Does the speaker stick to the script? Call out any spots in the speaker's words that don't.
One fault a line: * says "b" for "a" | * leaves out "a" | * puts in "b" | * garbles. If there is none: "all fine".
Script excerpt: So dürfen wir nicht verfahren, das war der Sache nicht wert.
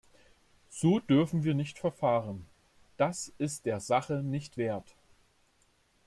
* says "ist" for "war"